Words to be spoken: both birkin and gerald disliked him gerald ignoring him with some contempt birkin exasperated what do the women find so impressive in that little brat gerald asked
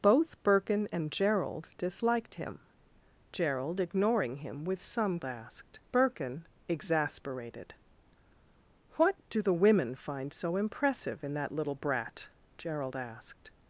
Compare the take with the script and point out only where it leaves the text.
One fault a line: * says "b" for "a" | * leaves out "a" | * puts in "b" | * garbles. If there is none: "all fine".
* says "asked" for "contempt"